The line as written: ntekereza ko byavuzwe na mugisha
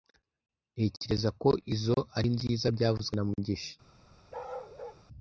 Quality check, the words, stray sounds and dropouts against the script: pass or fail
fail